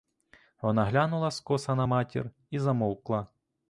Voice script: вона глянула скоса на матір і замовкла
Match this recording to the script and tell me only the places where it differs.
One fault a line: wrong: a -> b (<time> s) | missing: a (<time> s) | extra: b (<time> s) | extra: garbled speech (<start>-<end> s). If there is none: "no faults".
no faults